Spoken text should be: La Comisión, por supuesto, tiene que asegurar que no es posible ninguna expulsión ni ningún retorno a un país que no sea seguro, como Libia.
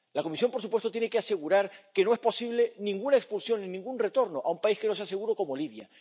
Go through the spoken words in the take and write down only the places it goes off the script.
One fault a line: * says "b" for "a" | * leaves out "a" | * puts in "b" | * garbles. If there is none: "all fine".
all fine